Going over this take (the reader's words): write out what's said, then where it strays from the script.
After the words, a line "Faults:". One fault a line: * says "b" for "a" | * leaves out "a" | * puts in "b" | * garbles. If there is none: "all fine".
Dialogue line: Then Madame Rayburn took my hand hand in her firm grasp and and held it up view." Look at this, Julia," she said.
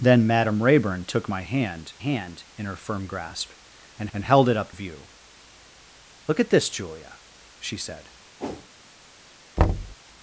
Then Madame Rayburn took my hand hand in her firm grasp and and held it up view." Look at this, Julia," she said.
Faults:
all fine